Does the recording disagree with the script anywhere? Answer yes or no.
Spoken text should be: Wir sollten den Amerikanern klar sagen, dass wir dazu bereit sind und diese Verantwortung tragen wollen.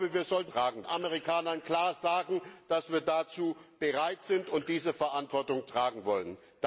yes